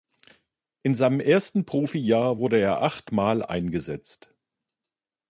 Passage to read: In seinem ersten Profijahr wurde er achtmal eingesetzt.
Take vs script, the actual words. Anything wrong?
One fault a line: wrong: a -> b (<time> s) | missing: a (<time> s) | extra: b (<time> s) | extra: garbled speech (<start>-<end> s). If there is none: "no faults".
no faults